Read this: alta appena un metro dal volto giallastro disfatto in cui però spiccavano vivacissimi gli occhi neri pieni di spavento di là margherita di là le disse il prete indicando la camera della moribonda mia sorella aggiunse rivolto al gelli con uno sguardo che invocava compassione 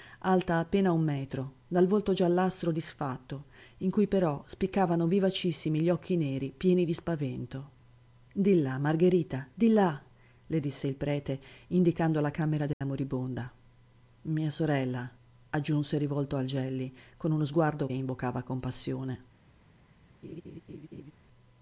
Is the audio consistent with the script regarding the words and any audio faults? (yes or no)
no